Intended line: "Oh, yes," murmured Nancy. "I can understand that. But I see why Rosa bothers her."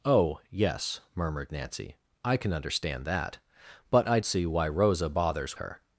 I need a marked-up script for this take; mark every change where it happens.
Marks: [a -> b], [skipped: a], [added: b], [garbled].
"Oh, yes," murmured Nancy. "I can understand that. But I see why Rosa bothers her."